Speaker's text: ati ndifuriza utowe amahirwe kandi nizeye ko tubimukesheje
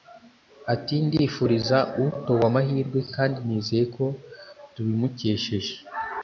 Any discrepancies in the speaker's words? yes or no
no